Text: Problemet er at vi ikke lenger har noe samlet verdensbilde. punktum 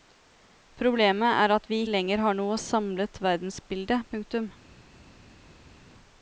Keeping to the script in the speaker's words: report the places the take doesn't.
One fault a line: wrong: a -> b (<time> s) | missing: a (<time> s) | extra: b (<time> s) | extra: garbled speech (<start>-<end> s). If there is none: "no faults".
missing: ikke (1.8 s)